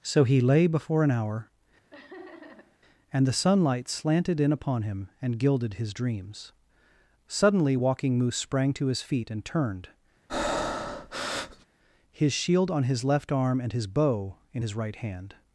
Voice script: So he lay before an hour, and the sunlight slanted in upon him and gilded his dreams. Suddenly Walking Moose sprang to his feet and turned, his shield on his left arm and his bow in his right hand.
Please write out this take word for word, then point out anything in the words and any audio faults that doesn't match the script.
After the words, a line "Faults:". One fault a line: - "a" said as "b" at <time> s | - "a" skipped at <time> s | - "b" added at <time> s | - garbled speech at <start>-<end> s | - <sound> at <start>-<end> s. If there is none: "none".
So he lay before an hour, and the sunlight slanted in upon him and gilded his dreams. Suddenly Walking Moose sprang to his feet and turned, his shield on his left arm and his bow in his right hand.
Faults:
- laugh at 1.9-2.8 s
- breath at 10.3-11.7 s